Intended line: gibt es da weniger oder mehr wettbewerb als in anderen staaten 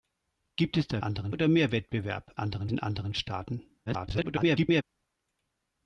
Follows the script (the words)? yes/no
no